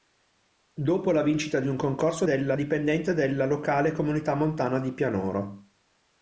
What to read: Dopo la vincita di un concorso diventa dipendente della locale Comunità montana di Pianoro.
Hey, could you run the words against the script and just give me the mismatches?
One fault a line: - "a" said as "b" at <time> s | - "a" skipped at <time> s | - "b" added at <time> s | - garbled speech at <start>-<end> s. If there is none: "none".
- "diventa" said as "della" at 2.2 s